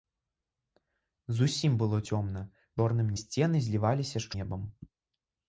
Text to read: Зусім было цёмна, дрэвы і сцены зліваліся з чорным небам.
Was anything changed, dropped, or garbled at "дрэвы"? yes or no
yes